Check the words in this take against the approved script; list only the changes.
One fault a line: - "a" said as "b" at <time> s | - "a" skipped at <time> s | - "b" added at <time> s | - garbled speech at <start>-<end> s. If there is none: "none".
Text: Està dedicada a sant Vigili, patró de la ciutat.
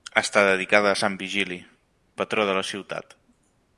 none